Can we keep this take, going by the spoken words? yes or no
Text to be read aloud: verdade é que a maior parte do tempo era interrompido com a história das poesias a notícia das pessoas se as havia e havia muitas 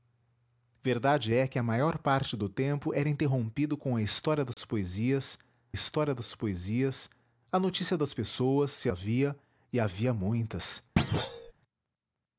no